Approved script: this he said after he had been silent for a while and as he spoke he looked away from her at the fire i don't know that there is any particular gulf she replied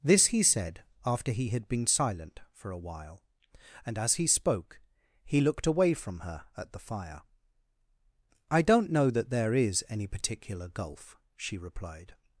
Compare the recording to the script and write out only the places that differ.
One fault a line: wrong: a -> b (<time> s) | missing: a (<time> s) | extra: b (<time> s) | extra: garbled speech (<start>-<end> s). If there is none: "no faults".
no faults